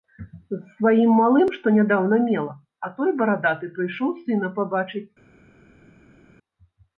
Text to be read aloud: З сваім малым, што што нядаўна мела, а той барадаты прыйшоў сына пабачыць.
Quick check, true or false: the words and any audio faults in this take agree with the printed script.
false